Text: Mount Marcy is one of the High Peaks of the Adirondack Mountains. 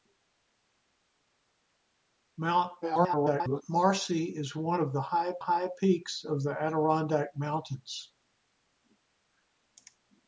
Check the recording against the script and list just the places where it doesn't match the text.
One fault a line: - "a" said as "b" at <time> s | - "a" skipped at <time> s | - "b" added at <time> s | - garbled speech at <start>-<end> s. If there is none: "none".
- garbled speech at 2.8-3.6 s
- "High" added at 5.4 s